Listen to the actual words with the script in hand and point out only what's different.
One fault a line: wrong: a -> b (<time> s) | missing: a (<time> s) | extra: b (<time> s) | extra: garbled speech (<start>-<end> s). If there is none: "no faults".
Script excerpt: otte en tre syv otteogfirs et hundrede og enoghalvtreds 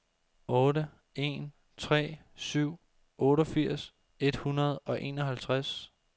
no faults